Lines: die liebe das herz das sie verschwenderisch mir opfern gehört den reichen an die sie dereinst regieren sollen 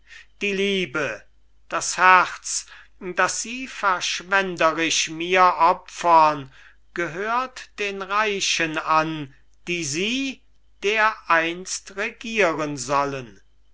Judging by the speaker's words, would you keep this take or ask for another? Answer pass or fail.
pass